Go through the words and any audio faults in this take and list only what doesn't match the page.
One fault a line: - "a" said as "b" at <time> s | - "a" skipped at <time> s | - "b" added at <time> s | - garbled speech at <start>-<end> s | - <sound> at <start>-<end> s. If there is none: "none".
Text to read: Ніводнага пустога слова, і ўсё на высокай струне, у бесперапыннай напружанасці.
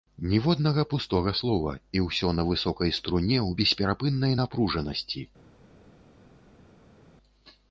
none